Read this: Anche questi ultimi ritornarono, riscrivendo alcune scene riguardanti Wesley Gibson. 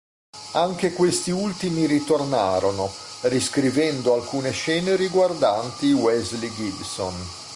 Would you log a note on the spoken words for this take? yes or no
no